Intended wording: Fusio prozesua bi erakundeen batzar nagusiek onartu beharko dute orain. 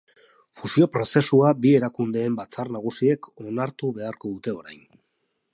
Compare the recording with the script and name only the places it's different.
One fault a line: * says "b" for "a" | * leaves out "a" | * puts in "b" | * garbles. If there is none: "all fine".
all fine